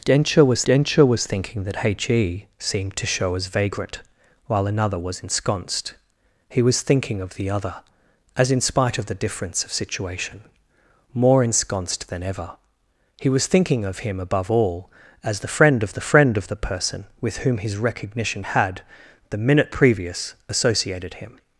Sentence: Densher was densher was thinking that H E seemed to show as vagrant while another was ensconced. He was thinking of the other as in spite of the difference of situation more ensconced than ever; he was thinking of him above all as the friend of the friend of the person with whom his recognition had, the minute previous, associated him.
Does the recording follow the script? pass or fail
pass